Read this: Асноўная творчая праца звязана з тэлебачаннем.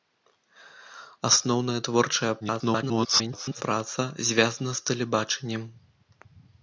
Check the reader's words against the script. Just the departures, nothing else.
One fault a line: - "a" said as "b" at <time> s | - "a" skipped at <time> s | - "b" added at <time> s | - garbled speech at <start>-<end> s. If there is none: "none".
- garbled speech at 2.4-3.6 s